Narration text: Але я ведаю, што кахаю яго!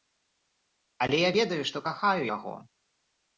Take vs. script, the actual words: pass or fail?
pass